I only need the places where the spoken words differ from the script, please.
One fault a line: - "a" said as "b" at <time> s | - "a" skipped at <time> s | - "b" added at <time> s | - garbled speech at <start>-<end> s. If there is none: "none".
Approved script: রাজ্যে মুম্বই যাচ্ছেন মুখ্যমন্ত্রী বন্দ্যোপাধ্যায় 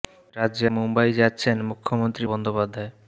none